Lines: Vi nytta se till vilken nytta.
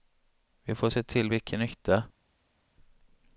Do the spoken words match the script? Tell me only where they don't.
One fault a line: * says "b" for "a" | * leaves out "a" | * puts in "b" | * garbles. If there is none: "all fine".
* says "får" for "nytta"